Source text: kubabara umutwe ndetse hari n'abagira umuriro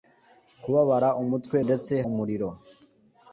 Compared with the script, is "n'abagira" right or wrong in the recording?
wrong